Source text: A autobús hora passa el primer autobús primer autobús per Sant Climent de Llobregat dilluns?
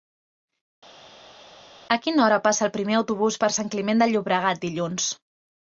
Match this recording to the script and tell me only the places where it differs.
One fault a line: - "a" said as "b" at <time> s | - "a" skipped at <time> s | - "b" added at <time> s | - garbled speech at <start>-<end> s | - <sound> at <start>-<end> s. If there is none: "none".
- "autobús" said as "quina" at 2.1 s
- "primer autobús" skipped at 3.4 s